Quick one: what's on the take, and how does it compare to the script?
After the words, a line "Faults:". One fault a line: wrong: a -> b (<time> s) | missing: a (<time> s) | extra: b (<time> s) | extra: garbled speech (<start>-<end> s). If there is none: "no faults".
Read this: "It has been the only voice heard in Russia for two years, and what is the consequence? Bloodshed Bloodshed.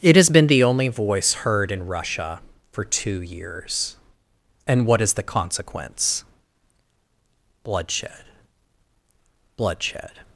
"It has been the only voice heard in Russia for two years, and what is the consequence? Bloodshed Bloodshed.
Faults:
no faults